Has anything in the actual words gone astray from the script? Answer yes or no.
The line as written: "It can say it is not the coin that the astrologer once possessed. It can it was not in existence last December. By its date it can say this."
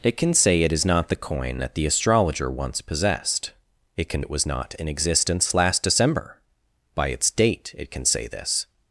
no